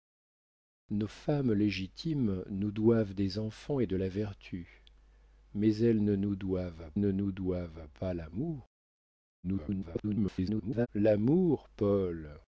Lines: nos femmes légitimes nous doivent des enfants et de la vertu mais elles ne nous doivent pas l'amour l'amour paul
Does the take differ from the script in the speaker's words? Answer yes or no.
yes